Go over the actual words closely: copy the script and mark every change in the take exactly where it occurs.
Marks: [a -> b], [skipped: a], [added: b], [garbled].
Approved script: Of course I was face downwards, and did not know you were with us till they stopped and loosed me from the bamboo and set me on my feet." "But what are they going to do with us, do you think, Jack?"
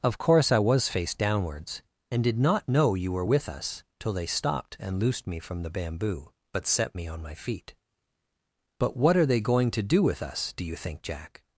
Of course I was face downwards, and did not know you were with us till they stopped and loosed me from the bamboo [and -> but] set me on my feet." "But what are they going to do with us, do you think, Jack?"